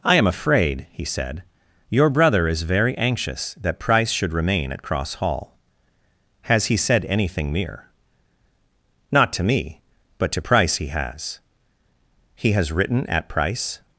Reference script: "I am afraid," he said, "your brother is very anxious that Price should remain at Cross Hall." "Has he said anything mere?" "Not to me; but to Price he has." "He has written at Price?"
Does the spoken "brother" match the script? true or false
true